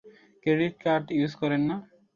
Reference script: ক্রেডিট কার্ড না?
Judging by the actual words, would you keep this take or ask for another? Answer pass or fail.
fail